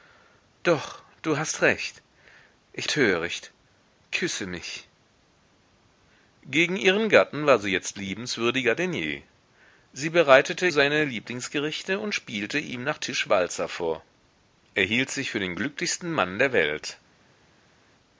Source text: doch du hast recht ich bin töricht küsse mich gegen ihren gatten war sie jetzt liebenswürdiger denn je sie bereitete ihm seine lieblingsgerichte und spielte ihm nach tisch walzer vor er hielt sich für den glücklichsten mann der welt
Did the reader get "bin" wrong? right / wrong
wrong